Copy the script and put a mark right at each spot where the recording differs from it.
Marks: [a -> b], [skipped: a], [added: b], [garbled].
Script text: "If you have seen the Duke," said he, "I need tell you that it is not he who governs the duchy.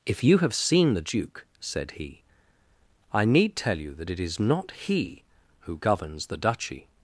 "If you have seen the Duke," said he, "I need tell you that it is not he who governs the duchy.